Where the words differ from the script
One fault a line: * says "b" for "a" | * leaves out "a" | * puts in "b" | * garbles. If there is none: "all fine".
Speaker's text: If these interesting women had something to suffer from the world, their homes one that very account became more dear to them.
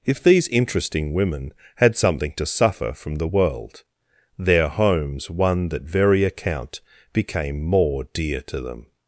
all fine